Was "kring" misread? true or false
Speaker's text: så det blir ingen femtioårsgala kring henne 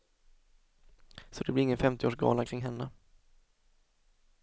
false